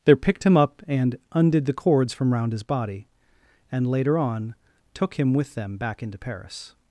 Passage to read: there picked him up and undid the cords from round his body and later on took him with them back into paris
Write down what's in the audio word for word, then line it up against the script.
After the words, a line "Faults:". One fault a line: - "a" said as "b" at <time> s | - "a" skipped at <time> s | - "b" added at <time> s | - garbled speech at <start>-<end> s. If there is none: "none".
there picked him up and undid the cords from round his body and later on took him with them back into paris
Faults:
none